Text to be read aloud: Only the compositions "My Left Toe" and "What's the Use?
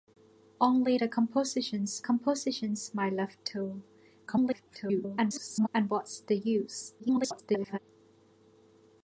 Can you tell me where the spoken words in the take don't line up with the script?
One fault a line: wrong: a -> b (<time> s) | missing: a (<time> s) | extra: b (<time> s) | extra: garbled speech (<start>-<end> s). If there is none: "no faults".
extra: compositions (2.0 s)
extra: garbled speech (4.3-5.7 s)
extra: garbled speech (7.0-7.8 s)